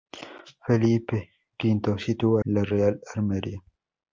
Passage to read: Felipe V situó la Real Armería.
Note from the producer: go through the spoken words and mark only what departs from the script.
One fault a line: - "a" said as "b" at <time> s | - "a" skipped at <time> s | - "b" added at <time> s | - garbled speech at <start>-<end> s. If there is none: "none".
none